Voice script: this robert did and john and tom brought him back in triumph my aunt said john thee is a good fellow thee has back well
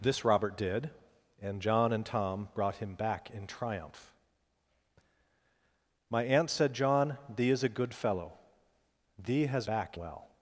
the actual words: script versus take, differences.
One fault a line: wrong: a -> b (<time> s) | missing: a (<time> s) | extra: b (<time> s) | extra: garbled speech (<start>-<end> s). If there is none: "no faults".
no faults